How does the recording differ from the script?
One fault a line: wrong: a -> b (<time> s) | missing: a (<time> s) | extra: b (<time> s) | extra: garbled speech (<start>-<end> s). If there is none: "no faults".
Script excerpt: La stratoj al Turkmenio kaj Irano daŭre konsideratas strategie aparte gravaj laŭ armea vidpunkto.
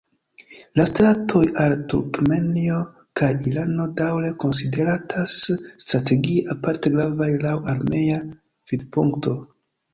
no faults